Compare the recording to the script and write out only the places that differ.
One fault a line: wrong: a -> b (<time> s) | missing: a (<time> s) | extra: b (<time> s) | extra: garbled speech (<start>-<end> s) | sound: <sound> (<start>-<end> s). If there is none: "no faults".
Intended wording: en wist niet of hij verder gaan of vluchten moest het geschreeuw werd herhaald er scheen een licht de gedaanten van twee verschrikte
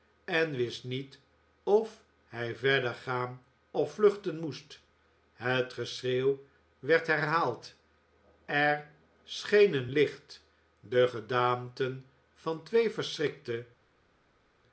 no faults